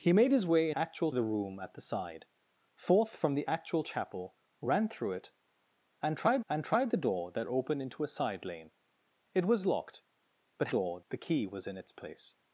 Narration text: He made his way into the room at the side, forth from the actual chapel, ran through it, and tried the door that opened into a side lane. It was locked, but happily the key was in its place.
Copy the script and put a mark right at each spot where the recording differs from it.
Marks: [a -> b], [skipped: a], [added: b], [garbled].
He made his way [into -> actual] the room at the side, forth from the actual chapel, ran through it, and tried [added: and tried] the door that opened into a side lane. It was locked, but [happily -> door] the key was in its place.